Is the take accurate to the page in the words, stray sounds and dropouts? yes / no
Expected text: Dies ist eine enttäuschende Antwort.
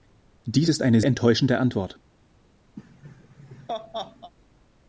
no